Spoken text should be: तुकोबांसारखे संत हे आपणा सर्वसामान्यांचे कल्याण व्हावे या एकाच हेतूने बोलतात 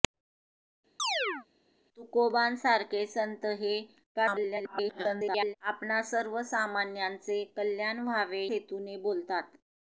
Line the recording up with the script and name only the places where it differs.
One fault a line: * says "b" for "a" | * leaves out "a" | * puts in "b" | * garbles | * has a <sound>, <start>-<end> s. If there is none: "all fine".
* has a chirp, 1.0-1.5 s
* garbles
* leaves out "या एकाच"